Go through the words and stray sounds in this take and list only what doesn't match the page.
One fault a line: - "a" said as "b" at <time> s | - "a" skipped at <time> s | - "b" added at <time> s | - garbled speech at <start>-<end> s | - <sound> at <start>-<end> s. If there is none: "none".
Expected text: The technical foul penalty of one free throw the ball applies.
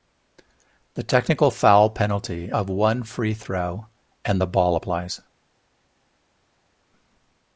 - "and" added at 4.2 s